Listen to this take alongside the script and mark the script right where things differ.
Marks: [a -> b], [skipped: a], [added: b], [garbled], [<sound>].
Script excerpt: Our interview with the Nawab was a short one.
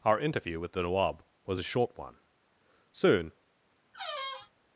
Our interview with the Nawab was a short one. [added: Soon] [squeak]